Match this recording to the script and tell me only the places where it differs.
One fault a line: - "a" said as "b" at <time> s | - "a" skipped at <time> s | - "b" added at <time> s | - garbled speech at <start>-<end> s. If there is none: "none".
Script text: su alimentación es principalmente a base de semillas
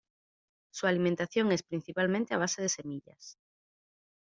none